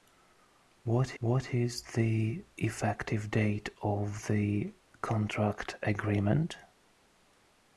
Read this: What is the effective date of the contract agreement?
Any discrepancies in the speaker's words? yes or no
yes